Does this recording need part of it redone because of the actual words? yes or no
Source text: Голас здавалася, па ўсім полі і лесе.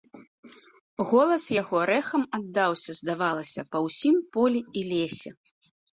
yes